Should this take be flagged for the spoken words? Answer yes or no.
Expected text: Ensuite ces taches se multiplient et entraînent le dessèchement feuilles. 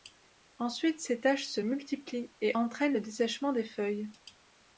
yes